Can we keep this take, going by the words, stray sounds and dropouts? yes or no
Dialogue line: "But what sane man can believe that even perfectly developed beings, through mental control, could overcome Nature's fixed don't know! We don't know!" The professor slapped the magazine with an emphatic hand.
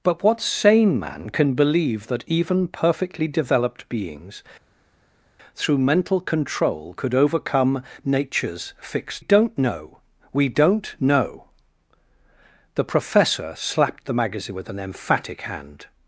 yes